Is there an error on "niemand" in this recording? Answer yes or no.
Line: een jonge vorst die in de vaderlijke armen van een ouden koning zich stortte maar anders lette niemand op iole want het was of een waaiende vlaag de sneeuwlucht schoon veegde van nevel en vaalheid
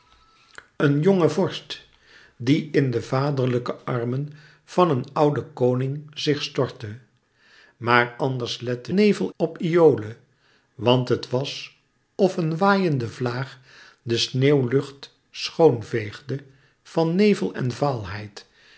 yes